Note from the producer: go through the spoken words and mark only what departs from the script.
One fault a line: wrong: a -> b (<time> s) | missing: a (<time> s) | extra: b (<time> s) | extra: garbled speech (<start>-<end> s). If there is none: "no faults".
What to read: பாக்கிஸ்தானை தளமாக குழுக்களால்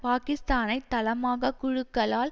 no faults